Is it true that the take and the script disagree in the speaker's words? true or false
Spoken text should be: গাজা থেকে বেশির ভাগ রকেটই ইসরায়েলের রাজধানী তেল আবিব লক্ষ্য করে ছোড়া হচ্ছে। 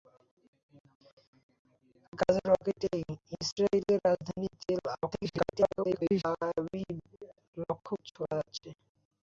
true